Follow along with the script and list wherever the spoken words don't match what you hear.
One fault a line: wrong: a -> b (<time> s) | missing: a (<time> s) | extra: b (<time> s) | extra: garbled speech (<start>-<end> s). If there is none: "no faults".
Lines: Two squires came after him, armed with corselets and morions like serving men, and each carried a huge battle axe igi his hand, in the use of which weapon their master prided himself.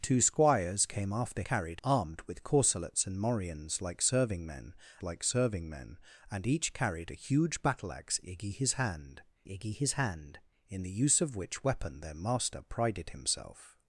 wrong: him -> carried (1.4 s)
extra: like serving men (5.0 s)
extra: igi his hand (9.5 s)